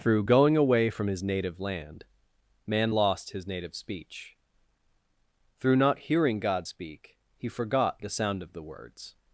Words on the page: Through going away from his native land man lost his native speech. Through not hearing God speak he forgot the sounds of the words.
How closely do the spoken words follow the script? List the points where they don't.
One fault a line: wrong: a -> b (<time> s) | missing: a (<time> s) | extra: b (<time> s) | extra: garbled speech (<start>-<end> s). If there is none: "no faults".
wrong: sounds -> sound (8.1 s)